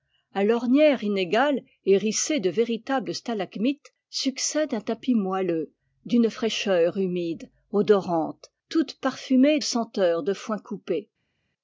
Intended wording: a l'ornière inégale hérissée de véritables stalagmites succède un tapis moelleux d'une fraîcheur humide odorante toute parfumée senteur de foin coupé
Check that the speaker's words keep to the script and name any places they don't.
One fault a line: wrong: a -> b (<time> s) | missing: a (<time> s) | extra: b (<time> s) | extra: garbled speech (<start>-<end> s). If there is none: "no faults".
no faults